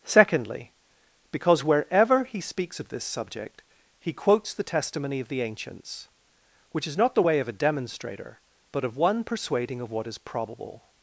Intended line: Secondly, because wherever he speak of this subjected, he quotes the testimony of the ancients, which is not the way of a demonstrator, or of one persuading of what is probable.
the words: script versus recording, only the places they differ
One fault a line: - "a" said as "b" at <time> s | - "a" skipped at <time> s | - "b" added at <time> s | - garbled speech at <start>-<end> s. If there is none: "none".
- "speak" said as "speaks" at 2.4 s
- "subjected" said as "subject" at 3.0 s
- "or" said as "but" at 8.7 s